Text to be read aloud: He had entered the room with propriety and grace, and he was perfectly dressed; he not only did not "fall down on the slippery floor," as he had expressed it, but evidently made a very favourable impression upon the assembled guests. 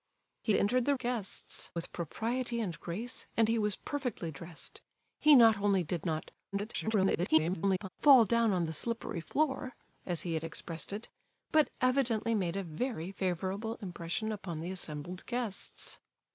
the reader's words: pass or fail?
fail